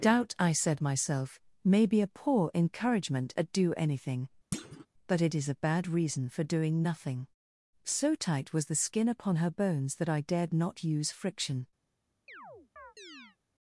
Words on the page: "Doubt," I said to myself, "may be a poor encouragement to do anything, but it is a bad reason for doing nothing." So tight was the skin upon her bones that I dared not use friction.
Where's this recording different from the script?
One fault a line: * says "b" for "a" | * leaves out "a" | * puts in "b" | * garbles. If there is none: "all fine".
* leaves out "to"
* says "at" for "to"